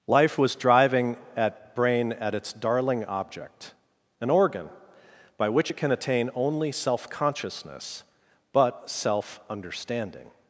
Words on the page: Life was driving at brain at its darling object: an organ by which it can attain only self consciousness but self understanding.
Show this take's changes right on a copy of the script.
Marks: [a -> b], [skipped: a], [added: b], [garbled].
Life was driving at brain at its darling object: an organ by which it can attain only self consciousness but self understanding.